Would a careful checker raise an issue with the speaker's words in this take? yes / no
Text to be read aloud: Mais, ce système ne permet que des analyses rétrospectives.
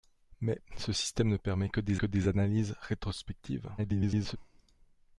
yes